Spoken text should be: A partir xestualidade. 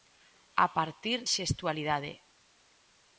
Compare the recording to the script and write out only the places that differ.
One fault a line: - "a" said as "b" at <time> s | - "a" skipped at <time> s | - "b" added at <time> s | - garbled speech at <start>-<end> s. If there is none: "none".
none